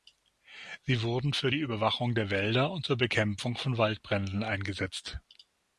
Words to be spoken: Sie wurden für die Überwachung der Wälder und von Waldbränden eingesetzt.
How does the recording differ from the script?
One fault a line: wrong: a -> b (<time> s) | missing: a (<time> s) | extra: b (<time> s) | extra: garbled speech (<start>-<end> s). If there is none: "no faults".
extra: zur Bekämpfung (2.8 s)